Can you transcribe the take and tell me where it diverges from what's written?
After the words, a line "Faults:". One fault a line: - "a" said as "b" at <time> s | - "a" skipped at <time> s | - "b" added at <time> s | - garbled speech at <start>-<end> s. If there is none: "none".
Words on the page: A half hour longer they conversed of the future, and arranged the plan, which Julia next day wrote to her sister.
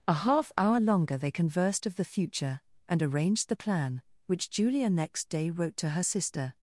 A half hour longer they conversed of the future, and arranged the plan, which Julia next day wrote to her sister.
Faults:
none